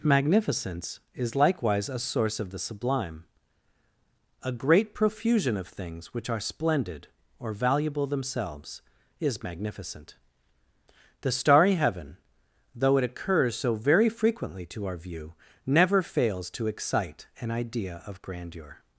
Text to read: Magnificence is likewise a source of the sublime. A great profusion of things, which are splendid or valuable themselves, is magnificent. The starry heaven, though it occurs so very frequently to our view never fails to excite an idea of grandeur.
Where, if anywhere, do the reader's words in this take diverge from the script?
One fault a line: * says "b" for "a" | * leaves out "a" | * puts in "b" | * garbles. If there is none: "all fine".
all fine